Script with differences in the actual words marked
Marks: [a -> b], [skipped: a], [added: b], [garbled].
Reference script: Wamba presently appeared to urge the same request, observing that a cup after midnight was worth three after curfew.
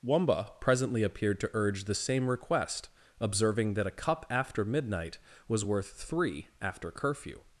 Wamba presently appeared to urge the same request, observing that a cup after midnight was worth three after curfew.